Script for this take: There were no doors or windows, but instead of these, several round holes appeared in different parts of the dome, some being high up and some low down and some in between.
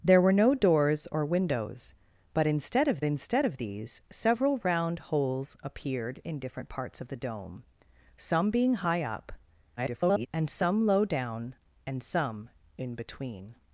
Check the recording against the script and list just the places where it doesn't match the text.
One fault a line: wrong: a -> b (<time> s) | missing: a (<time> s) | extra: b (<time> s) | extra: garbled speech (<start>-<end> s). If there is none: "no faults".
extra: instead of (3.0 s)
extra: garbled speech (9.8-10.3 s)